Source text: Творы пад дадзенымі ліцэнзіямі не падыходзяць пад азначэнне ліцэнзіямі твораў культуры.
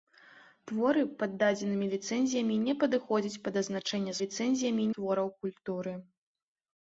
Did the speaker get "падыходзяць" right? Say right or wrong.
right